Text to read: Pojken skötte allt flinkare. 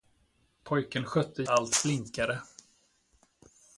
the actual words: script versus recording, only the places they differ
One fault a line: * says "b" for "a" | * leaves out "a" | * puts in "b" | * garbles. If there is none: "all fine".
all fine